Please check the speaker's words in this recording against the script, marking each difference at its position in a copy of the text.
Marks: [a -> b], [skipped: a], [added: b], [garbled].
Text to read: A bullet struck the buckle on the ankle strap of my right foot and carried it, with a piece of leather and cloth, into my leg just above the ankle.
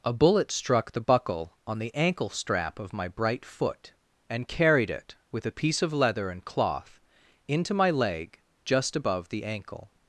A bullet struck the buckle on the ankle strap of my [right -> bright] foot and carried it, with a piece of leather and cloth, into my leg just above the ankle.